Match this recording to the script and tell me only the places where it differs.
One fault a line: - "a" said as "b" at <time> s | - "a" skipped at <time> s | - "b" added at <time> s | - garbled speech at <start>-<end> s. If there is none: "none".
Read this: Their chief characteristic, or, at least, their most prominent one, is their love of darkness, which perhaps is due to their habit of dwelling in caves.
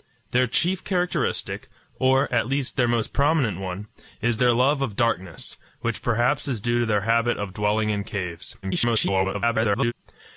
- garbled speech at 8.6-9.9 s